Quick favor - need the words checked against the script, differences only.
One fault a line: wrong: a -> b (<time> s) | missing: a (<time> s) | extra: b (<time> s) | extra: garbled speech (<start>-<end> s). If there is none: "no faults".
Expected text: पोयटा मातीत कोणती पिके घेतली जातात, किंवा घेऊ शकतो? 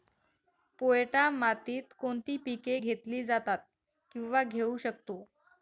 no faults